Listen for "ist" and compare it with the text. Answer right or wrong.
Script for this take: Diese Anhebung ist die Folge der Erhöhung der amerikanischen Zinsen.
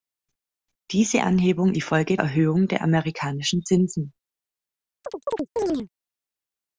wrong